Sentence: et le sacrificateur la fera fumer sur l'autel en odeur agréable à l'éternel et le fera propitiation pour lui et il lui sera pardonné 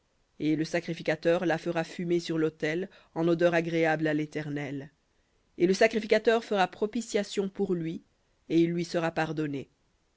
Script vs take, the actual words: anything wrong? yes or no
yes